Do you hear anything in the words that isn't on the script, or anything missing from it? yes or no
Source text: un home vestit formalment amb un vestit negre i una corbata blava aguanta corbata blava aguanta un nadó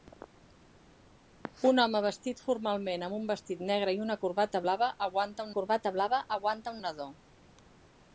no